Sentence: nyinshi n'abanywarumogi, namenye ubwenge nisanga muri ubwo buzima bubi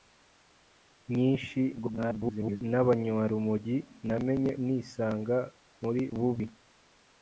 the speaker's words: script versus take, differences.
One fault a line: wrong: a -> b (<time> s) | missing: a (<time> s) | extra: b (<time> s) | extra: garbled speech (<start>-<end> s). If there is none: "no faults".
extra: garbled speech (1.7-2.6 s)
missing: ubwenge (4.5 s)
missing: ubwo buzima (6.0 s)